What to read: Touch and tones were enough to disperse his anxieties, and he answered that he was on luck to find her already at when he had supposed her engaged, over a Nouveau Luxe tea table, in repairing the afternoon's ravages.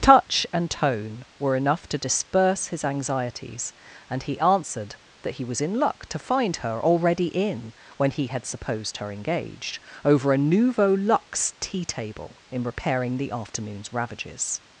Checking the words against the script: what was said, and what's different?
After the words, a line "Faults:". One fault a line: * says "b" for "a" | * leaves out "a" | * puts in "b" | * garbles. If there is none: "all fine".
Touch and tone were enough to disperse his anxieties, and he answered that he was in luck to find her already in when he had supposed her engaged, over a Nouveau Luxe tea table, in repairing the afternoon's ravages.
Faults:
* says "tone" for "tones"
* says "in" for "on"
* says "in" for "at"